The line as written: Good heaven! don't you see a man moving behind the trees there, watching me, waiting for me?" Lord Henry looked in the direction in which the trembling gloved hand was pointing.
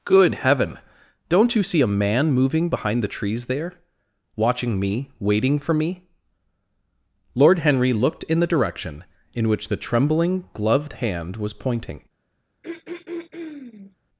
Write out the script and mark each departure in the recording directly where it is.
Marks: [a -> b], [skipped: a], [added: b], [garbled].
Good heaven! don't you see a man moving behind the trees there, watching me, waiting for me?" Lord Henry looked in the direction in which the trembling gloved hand was pointing.